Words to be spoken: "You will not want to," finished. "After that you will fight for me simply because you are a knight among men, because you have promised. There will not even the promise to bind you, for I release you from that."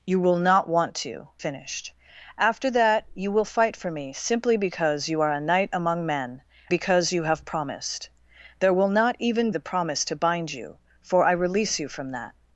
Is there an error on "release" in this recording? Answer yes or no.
no